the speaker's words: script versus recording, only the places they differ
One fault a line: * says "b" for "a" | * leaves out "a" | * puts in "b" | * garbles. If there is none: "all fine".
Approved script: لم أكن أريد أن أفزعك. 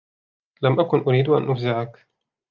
all fine